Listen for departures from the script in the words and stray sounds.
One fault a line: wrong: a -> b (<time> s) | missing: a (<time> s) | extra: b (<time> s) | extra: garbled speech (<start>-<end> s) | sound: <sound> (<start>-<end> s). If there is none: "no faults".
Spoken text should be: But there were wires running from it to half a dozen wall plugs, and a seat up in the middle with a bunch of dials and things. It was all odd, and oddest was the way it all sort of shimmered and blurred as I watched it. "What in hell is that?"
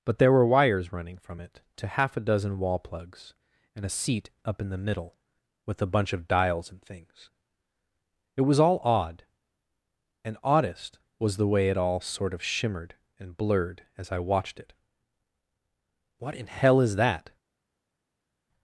no faults